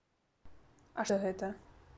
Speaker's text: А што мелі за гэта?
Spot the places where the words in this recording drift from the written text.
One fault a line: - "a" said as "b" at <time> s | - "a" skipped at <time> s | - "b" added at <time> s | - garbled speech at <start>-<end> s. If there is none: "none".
- "што мелі" skipped at 1.1 s